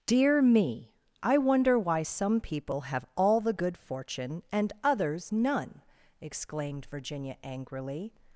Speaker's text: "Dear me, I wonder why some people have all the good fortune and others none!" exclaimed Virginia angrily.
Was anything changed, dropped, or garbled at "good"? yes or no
no